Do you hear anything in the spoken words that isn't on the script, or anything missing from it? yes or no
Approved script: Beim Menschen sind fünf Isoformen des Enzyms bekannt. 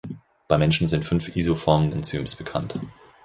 yes